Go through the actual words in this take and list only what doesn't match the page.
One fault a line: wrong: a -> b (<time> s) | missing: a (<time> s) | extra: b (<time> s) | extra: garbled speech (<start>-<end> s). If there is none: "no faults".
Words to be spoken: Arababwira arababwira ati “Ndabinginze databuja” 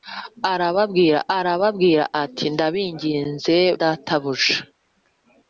no faults